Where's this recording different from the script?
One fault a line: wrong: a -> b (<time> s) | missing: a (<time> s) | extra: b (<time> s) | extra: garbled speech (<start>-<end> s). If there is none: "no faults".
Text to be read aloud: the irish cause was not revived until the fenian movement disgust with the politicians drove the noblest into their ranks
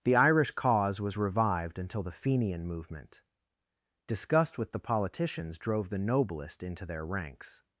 missing: not (1.1 s)